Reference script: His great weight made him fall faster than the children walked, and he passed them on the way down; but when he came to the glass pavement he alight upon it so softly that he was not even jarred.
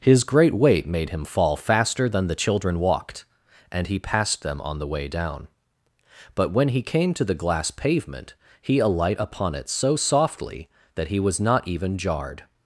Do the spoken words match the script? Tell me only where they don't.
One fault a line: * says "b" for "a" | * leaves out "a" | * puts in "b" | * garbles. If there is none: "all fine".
all fine